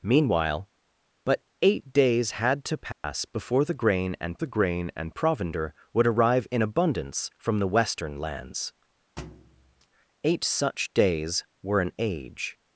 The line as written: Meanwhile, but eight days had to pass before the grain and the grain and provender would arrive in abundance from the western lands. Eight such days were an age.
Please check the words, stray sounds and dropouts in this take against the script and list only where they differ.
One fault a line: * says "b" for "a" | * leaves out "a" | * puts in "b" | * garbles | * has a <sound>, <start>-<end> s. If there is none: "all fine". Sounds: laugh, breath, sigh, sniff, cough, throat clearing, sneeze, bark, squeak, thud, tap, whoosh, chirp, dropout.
* has a dropout, 2.9-3.0 s
* has a thud, 9.2-9.9 s